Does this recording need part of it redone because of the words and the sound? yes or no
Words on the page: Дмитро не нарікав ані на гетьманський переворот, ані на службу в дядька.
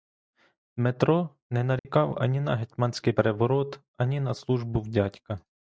yes